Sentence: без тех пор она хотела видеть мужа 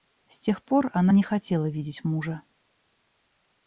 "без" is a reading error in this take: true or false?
true